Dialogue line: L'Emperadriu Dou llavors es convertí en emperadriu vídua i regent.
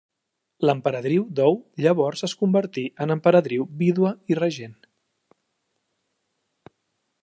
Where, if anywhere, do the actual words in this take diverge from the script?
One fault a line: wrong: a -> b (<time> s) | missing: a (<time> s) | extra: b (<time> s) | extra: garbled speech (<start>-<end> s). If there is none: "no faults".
no faults